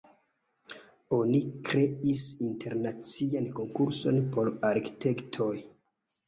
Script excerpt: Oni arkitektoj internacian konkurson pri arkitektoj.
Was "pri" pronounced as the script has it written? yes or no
no